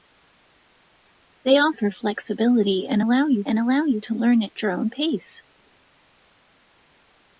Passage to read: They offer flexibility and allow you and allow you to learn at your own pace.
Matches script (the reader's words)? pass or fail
pass